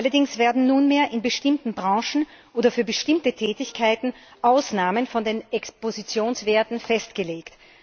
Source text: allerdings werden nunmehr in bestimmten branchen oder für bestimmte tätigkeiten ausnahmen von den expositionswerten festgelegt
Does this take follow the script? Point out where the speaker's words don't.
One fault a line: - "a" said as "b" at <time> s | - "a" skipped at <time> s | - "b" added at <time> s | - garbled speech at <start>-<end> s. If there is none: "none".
none